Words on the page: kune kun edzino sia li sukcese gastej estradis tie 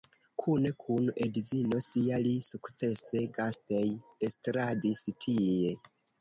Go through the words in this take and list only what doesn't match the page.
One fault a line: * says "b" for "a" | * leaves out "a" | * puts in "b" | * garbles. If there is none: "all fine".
all fine